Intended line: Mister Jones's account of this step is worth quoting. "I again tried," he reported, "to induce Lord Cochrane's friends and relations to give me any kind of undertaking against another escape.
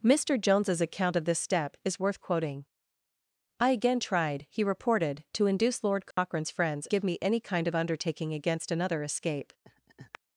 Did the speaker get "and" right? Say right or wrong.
wrong